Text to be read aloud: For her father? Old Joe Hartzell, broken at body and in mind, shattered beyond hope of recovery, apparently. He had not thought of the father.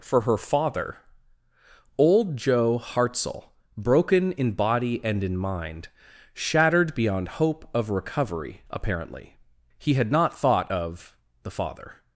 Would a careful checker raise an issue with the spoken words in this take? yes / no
yes